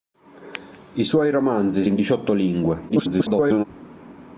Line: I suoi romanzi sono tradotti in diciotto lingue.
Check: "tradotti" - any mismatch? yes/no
yes